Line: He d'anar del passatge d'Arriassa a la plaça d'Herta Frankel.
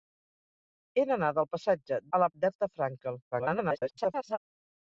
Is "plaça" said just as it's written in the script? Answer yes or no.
no